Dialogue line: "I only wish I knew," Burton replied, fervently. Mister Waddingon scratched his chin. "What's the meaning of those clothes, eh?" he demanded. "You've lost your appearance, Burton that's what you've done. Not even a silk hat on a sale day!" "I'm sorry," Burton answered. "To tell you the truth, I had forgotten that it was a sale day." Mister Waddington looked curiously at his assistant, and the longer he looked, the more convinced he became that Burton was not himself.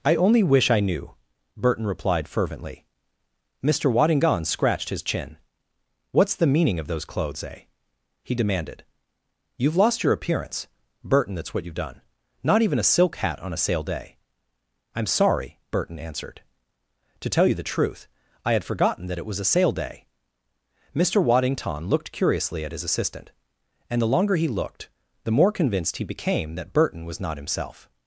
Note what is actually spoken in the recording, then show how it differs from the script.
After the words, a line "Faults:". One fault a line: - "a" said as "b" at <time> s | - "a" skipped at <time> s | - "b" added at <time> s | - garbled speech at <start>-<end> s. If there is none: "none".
"I only wish I knew," Burton replied, fervently. Mister Waddingon scratched his chin. "What's the meaning of those clothes, eh?" he demanded. "You've lost your appearance, Burton that's what you've done. Not even a silk hat on a sale day!" "I'm sorry," Burton answered. "To tell you the truth, I had forgotten that it was a sale day." Mister Waddington looked curiously at his assistant, and the longer he looked, the more convinced he became that Burton was not himself.
Faults:
none